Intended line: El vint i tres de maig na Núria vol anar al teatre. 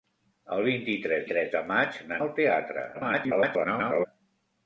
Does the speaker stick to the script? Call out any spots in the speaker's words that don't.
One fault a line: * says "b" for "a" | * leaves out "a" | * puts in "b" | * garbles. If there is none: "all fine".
* puts in "tres"
* leaves out "Núria vol anar"
* garbles